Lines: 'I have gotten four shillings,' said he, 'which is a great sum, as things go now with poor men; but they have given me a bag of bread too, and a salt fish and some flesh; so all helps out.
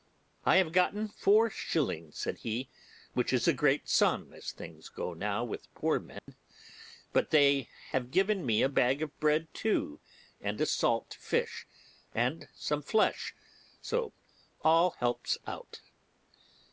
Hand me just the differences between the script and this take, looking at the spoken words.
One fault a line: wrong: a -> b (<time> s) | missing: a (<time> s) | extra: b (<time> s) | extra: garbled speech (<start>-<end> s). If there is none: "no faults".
no faults